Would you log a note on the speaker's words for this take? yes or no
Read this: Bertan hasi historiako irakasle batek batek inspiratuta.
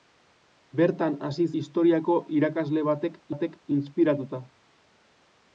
no